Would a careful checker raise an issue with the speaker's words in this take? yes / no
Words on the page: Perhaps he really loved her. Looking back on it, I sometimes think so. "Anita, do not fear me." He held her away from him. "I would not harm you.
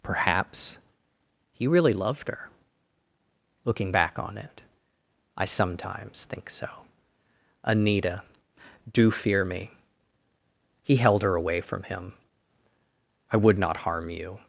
yes